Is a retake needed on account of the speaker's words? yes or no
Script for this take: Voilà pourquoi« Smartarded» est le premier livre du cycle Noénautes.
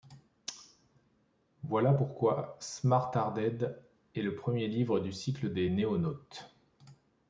yes